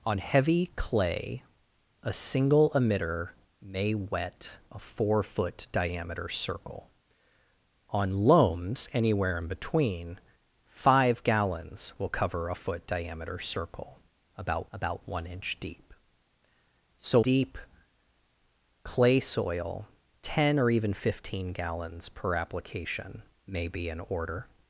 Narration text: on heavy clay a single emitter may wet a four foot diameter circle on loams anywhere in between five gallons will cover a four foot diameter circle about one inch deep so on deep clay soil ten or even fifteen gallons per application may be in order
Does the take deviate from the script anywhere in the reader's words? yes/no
yes